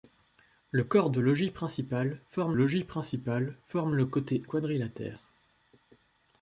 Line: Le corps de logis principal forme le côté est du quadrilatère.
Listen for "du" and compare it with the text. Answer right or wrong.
wrong